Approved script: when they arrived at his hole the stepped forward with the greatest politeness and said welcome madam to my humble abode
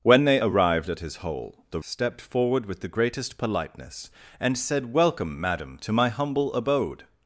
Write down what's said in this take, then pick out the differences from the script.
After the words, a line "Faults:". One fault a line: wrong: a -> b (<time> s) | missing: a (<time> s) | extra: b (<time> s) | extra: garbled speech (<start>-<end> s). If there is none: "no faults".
when they arrived at his hole the stepped forward with the greatest politeness and said welcome madam to my humble abode
Faults:
no faults